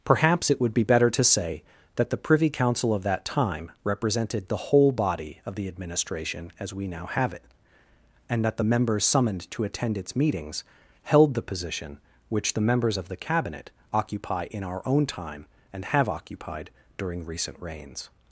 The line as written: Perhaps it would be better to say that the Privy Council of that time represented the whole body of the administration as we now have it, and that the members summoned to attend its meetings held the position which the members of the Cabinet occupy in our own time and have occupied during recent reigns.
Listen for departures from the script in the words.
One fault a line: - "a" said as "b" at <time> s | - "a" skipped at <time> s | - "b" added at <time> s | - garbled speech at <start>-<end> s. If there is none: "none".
none